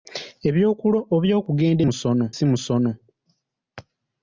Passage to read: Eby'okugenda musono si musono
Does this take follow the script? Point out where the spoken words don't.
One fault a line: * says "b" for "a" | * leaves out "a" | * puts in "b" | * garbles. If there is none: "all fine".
all fine